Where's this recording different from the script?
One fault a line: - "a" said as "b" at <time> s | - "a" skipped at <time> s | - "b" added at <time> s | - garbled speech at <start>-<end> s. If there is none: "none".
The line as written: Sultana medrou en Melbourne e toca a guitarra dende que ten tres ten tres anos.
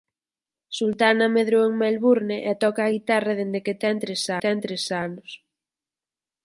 none